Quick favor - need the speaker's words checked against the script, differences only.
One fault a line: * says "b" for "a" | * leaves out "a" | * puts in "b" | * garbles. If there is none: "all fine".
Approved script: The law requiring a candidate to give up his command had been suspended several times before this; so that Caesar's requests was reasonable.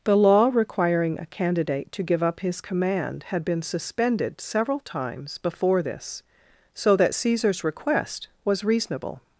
* says "request" for "requests"